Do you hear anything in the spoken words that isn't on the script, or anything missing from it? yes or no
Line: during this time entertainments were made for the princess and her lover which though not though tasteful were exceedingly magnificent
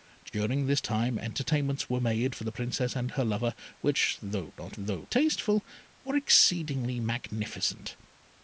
no